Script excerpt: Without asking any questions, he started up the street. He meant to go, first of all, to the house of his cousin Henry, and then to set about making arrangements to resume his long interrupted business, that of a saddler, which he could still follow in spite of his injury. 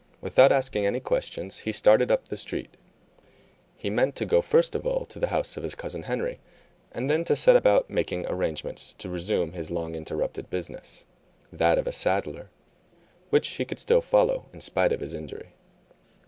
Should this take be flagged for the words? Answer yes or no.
no